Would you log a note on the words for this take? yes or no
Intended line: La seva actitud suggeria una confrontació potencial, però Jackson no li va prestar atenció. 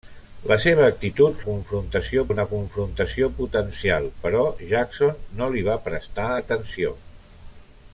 yes